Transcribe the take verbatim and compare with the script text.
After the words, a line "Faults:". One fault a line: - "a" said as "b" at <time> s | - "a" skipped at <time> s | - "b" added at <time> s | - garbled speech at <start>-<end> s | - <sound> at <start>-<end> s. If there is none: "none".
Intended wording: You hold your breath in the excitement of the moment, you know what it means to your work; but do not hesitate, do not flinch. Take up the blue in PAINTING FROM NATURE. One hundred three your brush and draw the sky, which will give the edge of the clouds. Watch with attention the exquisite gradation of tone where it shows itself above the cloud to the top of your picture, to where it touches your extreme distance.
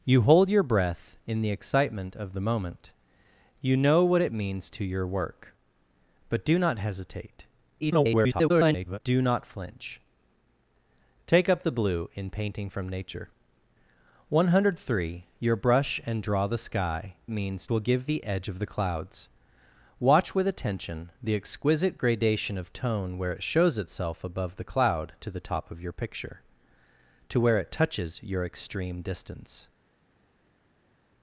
You hold your breath in the excitement of the moment, you know what it means to your work; but do not hesitate, [garbled] do not flinch. Take up the blue in PAINTING FROM NATURE. One hundred three your brush and draw the sky, means will give the edge of the clouds. Watch with attention the exquisite gradation of tone where it shows itself above the cloud to the top of your picture, to where it touches your extreme distance.
Faults:
- garbled speech at 7.8-9.0 s
- "which" said as "means" at 17.3 s